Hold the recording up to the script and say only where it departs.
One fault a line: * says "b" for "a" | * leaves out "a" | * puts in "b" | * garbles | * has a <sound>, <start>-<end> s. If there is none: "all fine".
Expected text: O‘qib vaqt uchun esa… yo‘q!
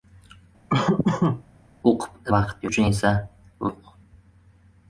* has a laugh, 0.7-1.4 s